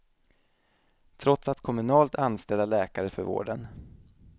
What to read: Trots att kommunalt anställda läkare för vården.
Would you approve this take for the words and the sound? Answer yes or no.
yes